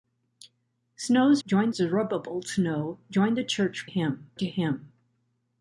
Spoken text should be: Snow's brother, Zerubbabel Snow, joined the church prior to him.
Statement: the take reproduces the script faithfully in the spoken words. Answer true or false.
false